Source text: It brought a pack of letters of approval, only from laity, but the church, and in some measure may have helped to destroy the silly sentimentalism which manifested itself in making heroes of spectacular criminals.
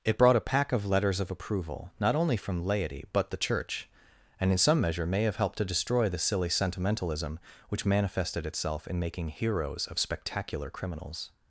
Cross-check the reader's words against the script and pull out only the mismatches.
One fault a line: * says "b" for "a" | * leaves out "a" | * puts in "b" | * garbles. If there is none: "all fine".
* puts in "not"